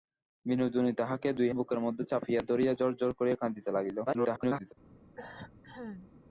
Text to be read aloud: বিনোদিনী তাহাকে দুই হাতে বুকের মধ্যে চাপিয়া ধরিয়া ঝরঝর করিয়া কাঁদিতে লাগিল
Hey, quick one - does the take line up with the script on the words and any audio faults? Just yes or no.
no